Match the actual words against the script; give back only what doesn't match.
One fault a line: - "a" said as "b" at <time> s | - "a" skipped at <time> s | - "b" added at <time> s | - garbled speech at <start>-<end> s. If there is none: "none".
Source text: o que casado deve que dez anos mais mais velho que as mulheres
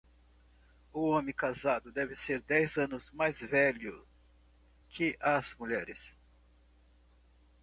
- "que" said as "homem" at 1.1 s
- "que" said as "ser" at 2.1 s
- "mais" skipped at 3.4 s